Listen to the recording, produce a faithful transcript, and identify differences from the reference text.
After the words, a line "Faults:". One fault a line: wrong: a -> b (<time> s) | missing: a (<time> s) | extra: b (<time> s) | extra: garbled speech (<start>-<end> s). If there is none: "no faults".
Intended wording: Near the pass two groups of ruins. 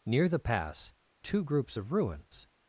Near the pass two groups of ruins.
Faults:
no faults